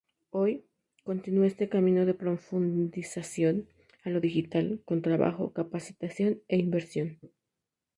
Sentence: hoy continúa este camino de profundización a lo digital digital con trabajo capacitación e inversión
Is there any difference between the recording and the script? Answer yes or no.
yes